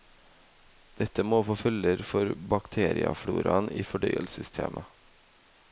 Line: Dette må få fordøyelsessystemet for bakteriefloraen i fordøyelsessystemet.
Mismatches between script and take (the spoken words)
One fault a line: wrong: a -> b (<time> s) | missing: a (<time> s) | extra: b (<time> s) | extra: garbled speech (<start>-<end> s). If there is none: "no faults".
wrong: fordøyelsessystemet -> følger (1.6 s)